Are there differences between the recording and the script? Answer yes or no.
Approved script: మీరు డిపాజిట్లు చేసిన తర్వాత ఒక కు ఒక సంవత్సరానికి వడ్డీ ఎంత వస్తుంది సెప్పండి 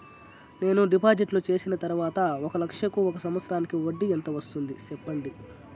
yes